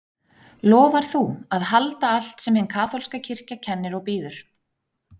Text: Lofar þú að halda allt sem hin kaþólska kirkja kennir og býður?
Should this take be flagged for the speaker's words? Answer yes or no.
no